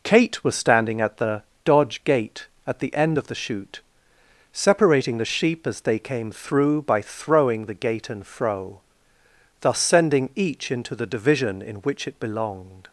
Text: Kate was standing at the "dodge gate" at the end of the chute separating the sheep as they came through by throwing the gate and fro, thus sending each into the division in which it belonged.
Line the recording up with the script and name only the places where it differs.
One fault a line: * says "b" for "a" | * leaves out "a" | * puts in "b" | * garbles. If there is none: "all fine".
all fine